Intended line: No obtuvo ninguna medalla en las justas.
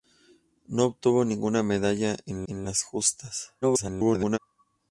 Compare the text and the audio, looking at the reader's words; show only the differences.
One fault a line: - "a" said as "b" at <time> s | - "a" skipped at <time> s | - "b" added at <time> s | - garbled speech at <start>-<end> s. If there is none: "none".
- "en" added at 2.5 s
- garbled speech at 3.6-4.4 s